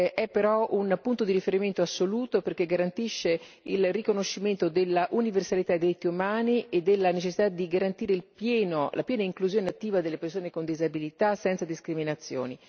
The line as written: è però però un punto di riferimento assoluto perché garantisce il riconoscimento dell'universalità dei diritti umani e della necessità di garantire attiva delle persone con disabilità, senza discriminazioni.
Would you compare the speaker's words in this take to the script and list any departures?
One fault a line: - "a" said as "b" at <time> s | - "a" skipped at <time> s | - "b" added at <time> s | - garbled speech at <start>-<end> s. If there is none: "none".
- "però" skipped at 0.7 s
- "la piena inclusione" added at 8.2 s